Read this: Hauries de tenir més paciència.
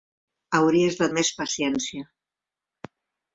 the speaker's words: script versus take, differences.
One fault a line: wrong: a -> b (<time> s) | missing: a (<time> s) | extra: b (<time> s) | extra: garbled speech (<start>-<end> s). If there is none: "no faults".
missing: tenir (1.1 s)